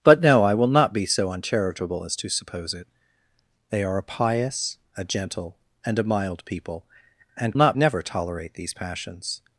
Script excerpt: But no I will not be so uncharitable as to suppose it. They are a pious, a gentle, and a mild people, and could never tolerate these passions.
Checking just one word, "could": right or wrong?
wrong